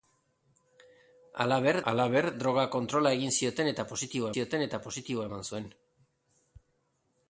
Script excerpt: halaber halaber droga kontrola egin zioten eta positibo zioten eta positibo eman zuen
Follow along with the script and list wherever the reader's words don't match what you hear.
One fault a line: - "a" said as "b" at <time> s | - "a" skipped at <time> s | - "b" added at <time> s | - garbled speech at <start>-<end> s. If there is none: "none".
none